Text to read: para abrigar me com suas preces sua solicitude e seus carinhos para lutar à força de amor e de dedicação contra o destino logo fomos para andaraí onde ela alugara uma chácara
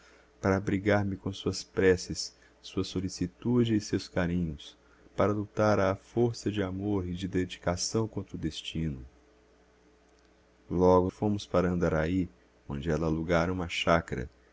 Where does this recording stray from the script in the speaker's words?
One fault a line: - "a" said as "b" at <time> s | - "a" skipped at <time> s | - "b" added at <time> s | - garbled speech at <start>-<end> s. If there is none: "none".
none